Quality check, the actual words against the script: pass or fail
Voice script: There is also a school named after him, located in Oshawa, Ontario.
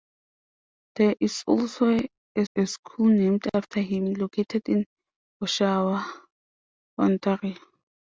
fail